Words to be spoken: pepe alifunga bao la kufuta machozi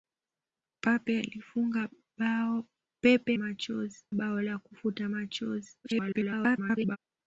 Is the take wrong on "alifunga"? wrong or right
wrong